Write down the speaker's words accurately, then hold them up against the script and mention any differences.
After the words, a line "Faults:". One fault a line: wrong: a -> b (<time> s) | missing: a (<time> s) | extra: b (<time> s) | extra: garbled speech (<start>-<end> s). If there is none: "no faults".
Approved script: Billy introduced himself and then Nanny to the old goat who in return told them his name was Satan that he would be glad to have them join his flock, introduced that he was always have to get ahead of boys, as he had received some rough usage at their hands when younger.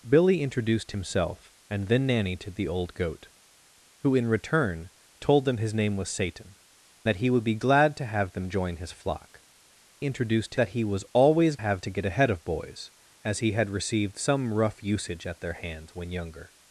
Billy introduced himself and then Nanny to the old goat who in return told them his name was Satan that he would be glad to have them join his flock, introduced that he was always have to get ahead of boys, as he had received some rough usage at their hands when younger.
Faults:
no faults